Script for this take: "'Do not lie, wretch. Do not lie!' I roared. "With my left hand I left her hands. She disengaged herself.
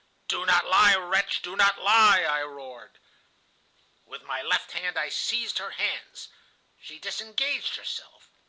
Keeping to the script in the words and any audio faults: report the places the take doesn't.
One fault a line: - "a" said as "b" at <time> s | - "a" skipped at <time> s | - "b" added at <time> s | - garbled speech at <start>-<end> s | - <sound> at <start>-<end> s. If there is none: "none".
- "left" said as "seized" at 5.1 s